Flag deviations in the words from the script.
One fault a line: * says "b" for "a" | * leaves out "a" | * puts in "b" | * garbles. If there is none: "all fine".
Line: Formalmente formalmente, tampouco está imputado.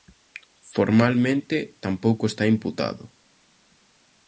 * leaves out "formalmente"